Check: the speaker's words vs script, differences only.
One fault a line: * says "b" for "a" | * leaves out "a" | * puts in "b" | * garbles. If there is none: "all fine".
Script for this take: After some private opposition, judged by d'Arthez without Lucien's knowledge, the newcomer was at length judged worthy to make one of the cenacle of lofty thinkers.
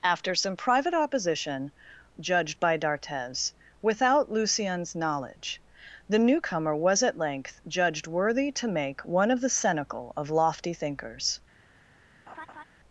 all fine